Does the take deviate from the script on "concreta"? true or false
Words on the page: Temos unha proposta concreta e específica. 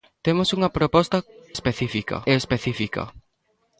true